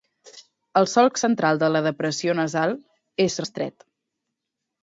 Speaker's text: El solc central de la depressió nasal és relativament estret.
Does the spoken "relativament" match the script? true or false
false